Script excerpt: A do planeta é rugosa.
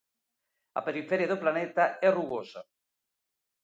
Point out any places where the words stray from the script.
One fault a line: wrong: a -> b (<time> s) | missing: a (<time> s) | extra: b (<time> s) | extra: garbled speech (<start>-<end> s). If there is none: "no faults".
extra: periferia (0.9 s)